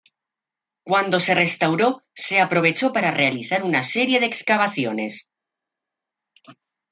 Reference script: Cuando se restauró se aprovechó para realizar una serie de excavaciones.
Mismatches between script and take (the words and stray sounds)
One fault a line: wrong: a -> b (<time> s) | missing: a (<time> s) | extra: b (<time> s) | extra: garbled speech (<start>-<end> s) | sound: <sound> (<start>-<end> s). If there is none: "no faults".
no faults